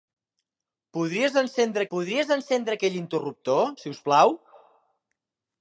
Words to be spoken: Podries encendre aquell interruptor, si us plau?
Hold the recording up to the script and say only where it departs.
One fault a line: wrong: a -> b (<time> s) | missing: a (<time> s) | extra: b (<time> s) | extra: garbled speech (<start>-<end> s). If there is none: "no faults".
extra: podries encendre (1.9 s)